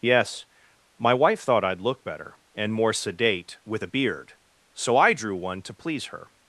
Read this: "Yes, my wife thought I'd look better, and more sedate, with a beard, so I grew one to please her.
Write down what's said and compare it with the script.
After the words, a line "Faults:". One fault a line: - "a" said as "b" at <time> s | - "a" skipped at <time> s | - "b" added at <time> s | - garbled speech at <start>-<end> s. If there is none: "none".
"Yes, my wife thought I'd look better, and more sedate, with a beard, so I drew one to please her.
Faults:
- "grew" said as "drew" at 5.1 s